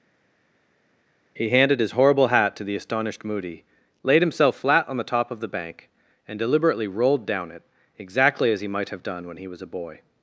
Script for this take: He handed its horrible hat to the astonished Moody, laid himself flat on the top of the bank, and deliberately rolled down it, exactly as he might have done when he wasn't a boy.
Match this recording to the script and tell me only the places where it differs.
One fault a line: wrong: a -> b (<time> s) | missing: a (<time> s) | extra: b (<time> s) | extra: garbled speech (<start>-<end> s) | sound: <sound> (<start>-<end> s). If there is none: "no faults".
wrong: its -> his (1.8 s)
wrong: wasn't -> was (9.5 s)